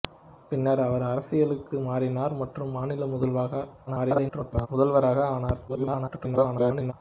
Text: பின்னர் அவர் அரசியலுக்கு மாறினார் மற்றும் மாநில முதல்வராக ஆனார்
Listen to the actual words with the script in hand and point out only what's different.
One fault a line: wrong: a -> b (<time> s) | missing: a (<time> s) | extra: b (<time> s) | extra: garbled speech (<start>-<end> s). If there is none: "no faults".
extra: garbled speech (3.9-4.7 s)
extra: garbled speech (5.7-6.9 s)